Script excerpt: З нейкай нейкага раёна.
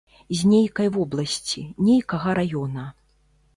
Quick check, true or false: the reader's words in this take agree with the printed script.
false